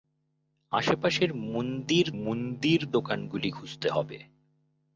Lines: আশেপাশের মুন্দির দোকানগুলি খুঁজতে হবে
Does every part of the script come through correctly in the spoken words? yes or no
no